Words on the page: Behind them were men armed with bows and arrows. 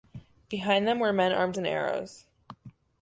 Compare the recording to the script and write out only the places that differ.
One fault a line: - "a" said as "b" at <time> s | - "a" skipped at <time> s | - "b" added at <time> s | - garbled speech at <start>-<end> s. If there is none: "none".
- "with bows" skipped at 1.6 s